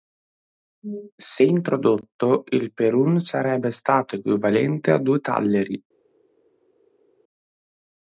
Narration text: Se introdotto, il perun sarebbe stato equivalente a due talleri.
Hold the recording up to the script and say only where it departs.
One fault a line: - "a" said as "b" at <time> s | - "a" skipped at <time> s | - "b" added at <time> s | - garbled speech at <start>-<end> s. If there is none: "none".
none